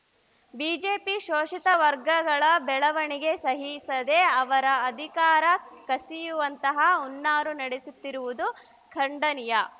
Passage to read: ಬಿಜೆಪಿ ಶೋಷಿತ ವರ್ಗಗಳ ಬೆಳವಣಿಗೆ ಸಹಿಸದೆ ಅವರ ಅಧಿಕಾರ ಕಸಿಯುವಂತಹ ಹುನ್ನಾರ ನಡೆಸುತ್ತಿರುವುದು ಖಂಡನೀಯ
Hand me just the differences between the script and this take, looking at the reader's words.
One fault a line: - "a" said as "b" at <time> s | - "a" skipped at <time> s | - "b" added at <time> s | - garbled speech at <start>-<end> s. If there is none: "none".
none